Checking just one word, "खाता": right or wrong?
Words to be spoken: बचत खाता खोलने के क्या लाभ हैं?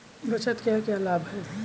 wrong